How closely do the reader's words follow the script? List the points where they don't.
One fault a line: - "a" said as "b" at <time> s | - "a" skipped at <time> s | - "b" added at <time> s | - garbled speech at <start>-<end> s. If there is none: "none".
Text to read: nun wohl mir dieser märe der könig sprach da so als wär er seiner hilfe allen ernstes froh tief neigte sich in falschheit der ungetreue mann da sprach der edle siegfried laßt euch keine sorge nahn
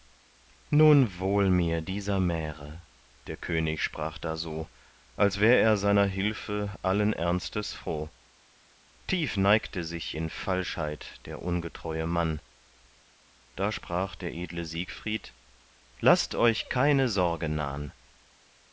none